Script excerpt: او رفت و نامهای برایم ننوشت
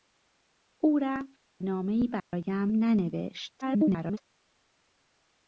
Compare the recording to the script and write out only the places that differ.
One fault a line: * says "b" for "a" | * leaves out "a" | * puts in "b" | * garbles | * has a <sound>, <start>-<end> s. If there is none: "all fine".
* leaves out "و"
* has a dropout, 2.2-2.3 s
* garbles